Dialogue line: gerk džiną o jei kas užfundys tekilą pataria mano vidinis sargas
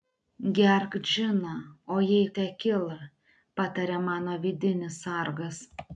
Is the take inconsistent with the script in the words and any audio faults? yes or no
yes